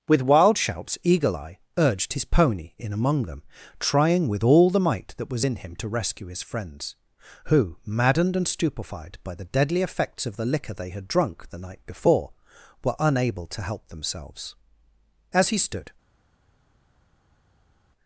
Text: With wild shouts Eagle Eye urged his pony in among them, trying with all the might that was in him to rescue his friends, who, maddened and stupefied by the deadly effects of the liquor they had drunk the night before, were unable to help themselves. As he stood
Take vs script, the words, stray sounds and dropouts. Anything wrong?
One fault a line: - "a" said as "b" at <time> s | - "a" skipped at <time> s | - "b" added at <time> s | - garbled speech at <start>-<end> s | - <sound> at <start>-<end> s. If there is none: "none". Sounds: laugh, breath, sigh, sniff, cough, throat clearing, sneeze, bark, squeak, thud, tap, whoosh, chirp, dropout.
none